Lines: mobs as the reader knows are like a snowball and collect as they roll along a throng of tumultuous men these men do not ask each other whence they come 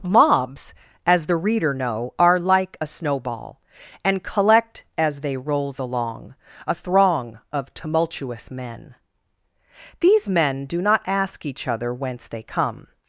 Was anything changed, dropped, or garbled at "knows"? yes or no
yes